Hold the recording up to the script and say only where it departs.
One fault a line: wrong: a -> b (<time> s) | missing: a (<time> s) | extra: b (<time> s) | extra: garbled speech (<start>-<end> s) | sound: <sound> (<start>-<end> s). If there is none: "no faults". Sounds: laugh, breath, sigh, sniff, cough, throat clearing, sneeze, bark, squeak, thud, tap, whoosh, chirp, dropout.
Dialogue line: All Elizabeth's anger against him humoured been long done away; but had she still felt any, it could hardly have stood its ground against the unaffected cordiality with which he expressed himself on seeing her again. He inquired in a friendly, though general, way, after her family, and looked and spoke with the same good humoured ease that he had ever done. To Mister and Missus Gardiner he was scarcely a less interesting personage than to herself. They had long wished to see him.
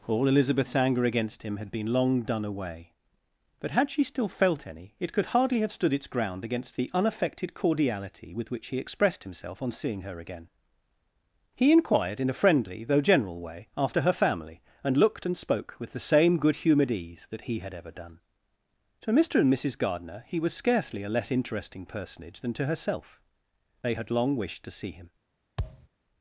wrong: humoured -> had (1.6 s)
sound: thud (25.6-25.9 s)